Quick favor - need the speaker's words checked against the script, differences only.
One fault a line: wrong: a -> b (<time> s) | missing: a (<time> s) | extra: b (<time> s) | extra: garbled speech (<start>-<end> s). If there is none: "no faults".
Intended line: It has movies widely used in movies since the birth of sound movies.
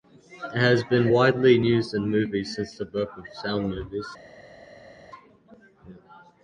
wrong: movies -> been (0.8 s)